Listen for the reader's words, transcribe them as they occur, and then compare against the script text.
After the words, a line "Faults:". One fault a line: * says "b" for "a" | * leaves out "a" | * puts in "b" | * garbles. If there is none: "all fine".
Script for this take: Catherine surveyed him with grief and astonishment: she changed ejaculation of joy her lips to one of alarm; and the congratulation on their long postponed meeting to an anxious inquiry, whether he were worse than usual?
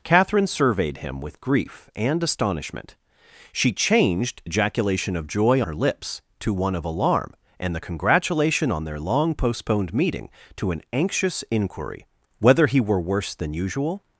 Catherine surveyed him with grief and astonishment: she changed ejaculation of joy her lips to one of alarm; and the congratulation on their long postponed meeting to an anxious inquiry, whether he were worse than usual?
Faults:
all fine